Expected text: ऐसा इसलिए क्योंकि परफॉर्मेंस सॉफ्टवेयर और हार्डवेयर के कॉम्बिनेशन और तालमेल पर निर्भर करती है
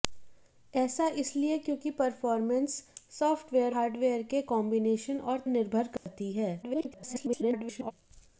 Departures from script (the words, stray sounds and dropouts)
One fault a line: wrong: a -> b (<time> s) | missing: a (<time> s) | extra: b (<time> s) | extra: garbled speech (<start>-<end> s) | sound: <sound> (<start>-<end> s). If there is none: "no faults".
missing: और (3.8 s)
missing: तालमेल पर (5.4 s)
sound: dropout (6.0-6.1 s)
extra: garbled speech (6.6-7.9 s)